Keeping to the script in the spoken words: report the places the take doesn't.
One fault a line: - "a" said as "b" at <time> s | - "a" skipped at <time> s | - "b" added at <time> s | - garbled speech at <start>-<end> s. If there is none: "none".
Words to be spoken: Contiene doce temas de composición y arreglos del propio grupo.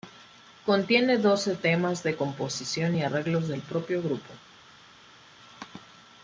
none